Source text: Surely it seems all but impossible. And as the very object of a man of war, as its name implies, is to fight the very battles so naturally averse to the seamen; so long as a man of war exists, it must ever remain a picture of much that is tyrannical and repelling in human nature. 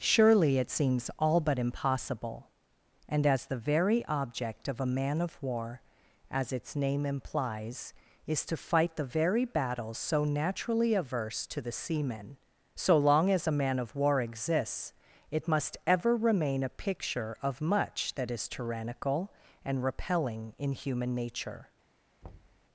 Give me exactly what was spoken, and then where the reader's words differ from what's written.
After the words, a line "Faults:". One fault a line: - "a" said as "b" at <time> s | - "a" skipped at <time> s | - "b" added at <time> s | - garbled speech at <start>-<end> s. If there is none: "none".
Surely it seems all but impossible. And as the very object of a man of war, as its name implies, is to fight the very battles so naturally averse to the seamen; so long as a man of war exists, it must ever remain a picture of much that is tyrannical and repelling in human nature.
Faults:
none